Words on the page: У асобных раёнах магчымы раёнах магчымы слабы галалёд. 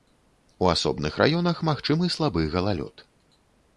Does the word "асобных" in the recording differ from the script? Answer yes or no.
no